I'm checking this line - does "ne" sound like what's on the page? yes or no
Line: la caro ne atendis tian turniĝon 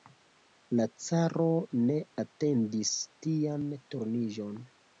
yes